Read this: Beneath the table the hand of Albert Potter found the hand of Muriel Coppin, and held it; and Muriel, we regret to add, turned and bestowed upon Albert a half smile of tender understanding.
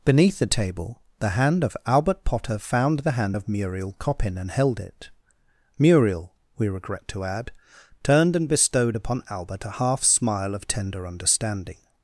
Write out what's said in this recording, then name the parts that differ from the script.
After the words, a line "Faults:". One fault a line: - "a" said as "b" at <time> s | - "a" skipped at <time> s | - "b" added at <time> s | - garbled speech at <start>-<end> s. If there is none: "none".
Beneath the table the hand of Albert Potter found the hand of Muriel Coppin, and held it; Muriel, we regret to add, turned and bestowed upon Albert a half smile of tender understanding.
Faults:
- "and" skipped at 5.1 s